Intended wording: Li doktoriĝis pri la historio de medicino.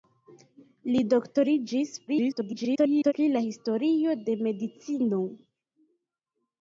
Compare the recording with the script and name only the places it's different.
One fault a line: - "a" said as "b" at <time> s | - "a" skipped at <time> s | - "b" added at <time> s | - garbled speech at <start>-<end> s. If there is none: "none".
- garbled speech at 2.1-3.1 s